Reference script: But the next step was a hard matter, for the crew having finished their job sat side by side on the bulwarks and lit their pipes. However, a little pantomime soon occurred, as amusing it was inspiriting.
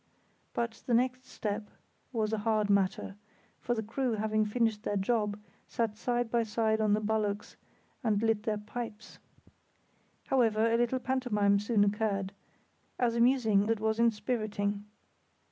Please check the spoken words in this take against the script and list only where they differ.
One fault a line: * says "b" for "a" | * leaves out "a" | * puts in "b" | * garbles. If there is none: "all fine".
all fine